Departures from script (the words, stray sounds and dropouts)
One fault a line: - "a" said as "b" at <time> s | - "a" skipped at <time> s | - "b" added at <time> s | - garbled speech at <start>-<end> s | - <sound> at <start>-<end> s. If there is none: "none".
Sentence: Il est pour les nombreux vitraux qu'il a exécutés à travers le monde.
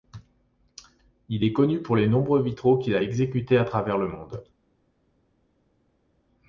- "connu" added at 1.5 s